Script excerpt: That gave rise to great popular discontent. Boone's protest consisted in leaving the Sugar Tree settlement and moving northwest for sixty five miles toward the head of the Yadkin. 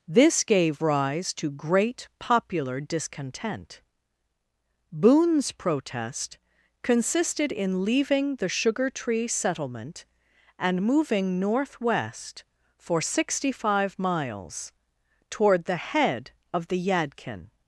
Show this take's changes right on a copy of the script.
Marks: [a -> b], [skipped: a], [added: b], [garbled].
[That -> This] gave rise to great popular discontent. Boone's protest consisted in leaving the Sugar Tree settlement and moving northwest for sixty five miles toward the head of the Yadkin.